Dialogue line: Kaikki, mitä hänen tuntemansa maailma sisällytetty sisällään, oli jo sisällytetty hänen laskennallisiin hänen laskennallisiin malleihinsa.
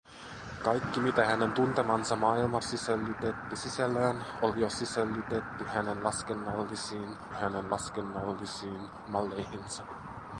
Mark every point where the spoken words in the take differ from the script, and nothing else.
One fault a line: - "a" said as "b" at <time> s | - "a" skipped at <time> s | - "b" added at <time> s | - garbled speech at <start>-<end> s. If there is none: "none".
none